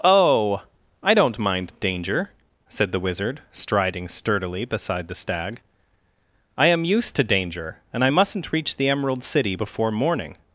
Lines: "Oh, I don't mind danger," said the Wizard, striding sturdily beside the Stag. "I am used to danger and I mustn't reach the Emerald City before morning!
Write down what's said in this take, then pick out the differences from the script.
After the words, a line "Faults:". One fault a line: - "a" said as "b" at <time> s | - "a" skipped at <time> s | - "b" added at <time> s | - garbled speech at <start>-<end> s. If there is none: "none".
"Oh, I don't mind danger," said the Wizard, striding sturdily beside the Stag. "I am used to danger and I mustn't reach the Emerald City before morning!
Faults:
none